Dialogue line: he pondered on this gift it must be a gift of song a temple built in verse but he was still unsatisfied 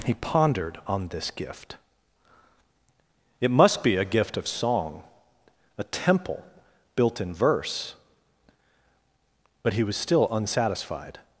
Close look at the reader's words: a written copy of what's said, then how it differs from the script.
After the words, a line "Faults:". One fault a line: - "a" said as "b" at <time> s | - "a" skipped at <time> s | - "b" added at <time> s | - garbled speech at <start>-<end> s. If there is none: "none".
he pondered on this gift it must be a gift of song a temple built in verse but he was still unsatisfied
Faults:
none